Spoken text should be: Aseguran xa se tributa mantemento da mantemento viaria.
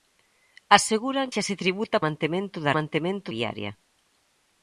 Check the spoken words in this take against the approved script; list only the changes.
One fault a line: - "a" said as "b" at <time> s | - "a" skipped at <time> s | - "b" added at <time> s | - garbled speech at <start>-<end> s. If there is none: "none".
none